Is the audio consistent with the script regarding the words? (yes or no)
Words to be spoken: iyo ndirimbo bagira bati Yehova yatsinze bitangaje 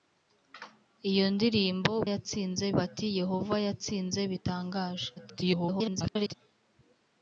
no